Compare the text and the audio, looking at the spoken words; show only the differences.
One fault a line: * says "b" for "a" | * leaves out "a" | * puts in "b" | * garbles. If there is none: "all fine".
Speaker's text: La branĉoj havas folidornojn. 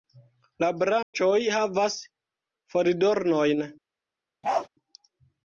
all fine